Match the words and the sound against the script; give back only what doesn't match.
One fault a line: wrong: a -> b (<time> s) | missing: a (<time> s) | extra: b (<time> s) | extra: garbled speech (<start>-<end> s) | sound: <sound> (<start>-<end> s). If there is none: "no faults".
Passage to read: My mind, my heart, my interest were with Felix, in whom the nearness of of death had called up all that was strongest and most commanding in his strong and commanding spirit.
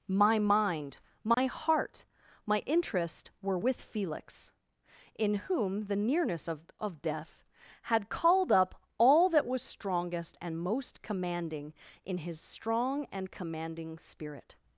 sound: dropout (1.3-1.4 s)